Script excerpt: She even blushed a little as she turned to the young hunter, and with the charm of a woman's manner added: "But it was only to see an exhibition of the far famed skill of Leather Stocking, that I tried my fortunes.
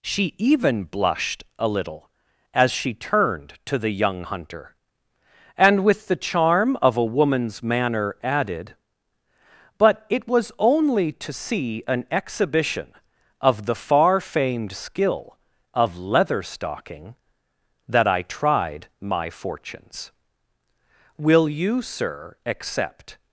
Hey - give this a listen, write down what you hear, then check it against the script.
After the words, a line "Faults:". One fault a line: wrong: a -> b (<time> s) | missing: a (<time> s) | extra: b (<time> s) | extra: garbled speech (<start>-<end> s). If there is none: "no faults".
She even blushed a little as she turned to the young hunter, and with the charm of a woman's manner added: "But it was only to see an exhibition of the far famed skill of Leather Stocking, that I tried my fortunes. Will you, sir, accept
Faults:
extra: Will you sir accept (21.2 s)